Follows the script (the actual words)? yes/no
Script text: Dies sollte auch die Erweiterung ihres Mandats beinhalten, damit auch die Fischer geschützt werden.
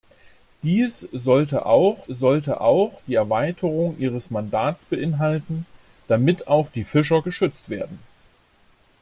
no